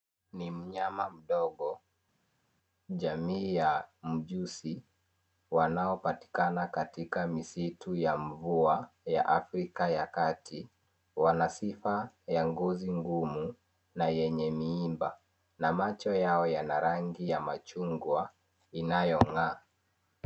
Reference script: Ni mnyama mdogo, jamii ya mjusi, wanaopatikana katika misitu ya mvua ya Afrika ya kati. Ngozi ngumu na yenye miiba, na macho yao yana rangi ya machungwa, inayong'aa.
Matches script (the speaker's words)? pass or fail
fail